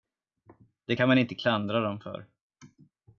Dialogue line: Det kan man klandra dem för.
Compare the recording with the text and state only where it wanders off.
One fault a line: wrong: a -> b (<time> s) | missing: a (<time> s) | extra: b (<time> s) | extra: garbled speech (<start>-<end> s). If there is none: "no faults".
extra: inte (1.2 s)